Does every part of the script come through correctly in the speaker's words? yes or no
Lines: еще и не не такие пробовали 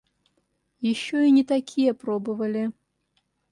no